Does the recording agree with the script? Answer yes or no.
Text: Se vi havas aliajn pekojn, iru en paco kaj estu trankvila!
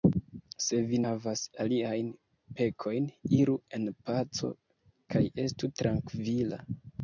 yes